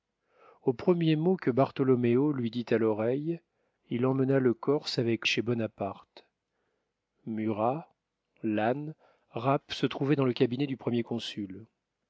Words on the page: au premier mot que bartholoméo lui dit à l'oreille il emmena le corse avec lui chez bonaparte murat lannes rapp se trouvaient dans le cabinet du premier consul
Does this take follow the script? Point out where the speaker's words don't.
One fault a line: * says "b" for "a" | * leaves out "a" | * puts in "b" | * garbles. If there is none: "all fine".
* leaves out "lui"